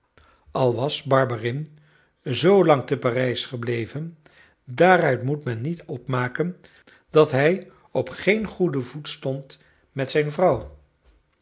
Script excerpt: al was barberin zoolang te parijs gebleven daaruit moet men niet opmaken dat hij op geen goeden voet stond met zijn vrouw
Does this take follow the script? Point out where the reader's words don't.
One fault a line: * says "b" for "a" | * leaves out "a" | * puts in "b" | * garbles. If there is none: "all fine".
all fine